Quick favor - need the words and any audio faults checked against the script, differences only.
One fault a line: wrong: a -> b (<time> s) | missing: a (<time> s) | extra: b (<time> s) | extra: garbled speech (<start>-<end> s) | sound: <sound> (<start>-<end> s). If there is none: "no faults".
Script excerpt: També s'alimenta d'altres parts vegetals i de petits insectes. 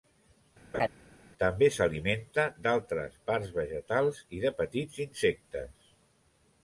sound: laugh (0.7-0.9 s)